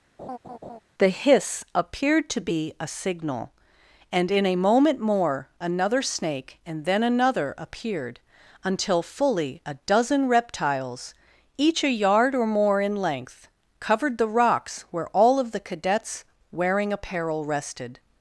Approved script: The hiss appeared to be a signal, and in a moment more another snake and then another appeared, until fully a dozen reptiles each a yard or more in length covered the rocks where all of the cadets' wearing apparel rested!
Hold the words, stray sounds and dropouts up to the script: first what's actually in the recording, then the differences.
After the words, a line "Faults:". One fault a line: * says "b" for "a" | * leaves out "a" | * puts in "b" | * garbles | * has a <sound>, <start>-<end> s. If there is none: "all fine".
The hiss appeared to be a signal, and in a moment more another snake and then another appeared, until fully a dozen reptiles each a yard or more in length covered the rocks where all of the cadets' wearing apparel rested!
Faults:
* has a laugh, 0.2-0.8 s